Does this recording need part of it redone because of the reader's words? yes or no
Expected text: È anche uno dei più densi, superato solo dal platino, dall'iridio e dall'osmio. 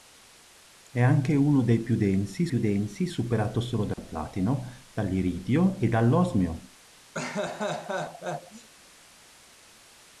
yes